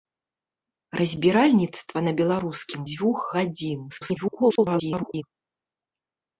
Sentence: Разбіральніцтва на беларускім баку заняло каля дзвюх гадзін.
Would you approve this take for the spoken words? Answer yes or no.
no